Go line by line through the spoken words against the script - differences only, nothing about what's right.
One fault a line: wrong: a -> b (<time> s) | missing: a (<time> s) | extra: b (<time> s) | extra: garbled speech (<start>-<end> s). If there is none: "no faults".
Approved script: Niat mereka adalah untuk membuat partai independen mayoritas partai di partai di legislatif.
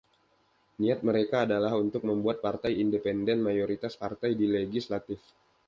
missing: partai di (4.5 s)